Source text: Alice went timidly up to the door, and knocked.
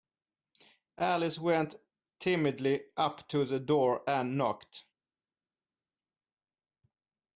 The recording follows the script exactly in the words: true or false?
true